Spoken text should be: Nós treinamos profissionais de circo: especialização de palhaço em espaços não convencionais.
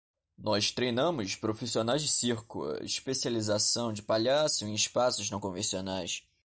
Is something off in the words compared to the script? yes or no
no